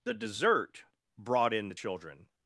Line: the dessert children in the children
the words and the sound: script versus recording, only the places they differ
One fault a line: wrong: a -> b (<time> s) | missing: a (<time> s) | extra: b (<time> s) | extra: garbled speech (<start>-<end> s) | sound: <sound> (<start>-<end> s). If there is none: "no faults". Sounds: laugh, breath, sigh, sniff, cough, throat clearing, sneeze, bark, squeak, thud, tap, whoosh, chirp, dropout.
wrong: children -> brought (1.1 s)